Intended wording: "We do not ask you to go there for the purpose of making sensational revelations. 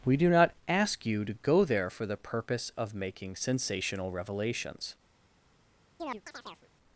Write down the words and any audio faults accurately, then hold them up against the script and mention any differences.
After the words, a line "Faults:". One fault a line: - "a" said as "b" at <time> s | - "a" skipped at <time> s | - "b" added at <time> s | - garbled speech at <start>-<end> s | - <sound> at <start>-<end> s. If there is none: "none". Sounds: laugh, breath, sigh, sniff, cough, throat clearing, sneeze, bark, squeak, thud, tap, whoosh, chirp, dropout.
"We do not ask you to go there for the purpose of making sensational revelations.
Faults:
- chirp at 6.0-6.7 s